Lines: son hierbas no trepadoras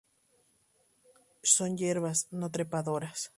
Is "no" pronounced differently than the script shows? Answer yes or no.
no